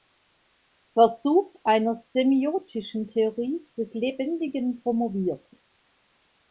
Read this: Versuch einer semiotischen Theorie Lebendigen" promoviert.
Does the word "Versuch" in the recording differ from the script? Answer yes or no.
no